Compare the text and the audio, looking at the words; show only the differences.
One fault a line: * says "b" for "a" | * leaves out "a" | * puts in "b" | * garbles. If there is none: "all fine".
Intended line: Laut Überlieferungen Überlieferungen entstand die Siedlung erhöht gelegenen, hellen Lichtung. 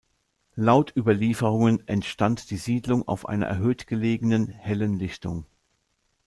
* leaves out "Überlieferungen"
* puts in "auf einer"